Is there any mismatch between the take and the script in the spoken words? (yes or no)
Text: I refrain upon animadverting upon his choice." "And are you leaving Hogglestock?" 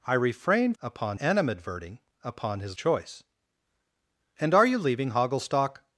no